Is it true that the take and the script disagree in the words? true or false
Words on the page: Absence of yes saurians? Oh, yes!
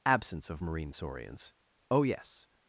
true